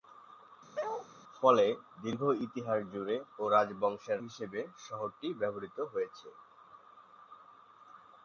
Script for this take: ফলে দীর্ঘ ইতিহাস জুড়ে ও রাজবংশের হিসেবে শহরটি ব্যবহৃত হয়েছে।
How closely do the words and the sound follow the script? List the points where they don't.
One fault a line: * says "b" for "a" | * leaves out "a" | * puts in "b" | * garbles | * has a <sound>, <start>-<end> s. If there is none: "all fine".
* has a bark, 0.7-1.1 s